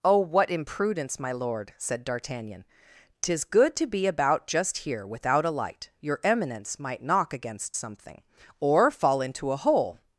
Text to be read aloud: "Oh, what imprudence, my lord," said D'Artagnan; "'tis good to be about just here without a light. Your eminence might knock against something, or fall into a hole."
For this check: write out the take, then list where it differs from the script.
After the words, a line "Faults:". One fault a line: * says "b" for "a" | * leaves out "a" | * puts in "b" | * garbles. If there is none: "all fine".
"Oh, what imprudence, my lord," said D'Artagnan; "'tis good to be about just here without a light. Your eminence might knock against something, or fall into a hole."
Faults:
all fine